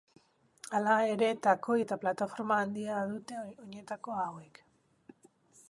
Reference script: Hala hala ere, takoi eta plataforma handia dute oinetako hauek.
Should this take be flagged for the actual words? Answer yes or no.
yes